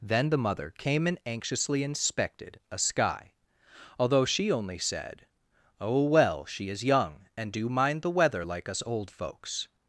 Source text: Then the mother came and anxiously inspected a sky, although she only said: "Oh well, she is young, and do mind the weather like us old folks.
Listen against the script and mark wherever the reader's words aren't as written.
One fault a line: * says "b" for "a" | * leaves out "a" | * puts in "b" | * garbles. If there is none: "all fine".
all fine